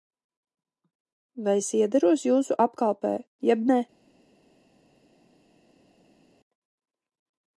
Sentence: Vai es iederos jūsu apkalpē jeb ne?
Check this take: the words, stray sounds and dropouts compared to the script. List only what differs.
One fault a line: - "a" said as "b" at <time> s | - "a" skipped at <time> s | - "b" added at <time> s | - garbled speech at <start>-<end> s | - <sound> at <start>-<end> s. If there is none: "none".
none